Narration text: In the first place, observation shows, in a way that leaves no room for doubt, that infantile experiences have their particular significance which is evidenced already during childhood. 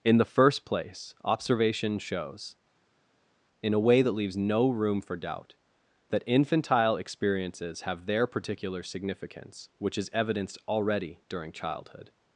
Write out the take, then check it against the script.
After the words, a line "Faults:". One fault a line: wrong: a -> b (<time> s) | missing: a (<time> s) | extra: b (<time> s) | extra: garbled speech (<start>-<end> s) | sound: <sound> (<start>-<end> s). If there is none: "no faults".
In the first place, observation shows, in a way that leaves no room for doubt, that infantile experiences have their particular significance which is evidenced already during childhood.
Faults:
no faults